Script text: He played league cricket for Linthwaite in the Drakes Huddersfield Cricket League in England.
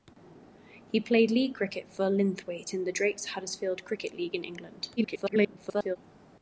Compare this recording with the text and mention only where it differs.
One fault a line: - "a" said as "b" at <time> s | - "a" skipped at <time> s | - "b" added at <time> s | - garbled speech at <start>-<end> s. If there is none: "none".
- garbled speech at 5.0-6.0 s